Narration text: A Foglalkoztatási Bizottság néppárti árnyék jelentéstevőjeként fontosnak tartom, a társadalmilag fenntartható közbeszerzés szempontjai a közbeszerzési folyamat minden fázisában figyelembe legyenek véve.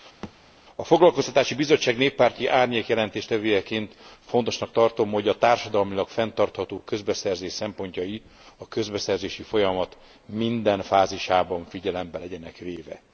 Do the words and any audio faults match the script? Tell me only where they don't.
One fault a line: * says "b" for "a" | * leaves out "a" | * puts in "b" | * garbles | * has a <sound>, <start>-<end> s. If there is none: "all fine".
* has a thud, 0.2-0.3 s
* puts in "hogy"